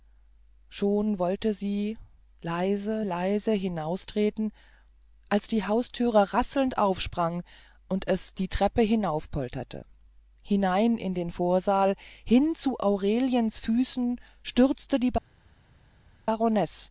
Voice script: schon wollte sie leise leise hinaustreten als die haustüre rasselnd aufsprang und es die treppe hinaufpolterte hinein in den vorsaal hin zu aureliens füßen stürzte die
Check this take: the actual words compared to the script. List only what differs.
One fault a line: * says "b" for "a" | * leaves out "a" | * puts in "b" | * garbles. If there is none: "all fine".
all fine